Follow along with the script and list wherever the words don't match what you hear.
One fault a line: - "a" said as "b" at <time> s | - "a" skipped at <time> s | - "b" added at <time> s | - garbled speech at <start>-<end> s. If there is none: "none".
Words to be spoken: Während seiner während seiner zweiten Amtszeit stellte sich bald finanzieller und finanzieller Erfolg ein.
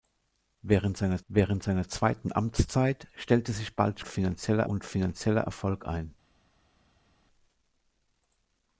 none